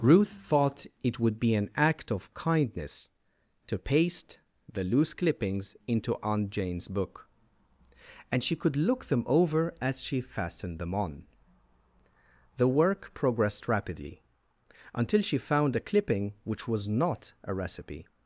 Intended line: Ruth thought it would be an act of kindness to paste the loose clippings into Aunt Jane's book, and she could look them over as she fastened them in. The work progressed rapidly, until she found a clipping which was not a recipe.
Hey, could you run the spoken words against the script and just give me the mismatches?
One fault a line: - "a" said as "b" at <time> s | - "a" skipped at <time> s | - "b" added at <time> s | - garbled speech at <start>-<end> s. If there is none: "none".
- "in" said as "on" at 10.9 s